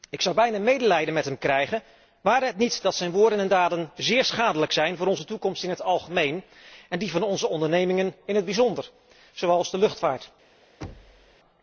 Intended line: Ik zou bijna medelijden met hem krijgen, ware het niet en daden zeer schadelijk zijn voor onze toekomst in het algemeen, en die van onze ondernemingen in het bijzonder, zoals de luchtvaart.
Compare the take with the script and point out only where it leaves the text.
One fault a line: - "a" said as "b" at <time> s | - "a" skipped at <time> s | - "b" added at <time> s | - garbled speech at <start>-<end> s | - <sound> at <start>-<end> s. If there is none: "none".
- "dat zijn woorden" added at 2.8 s
- thud at 10.8-11.4 s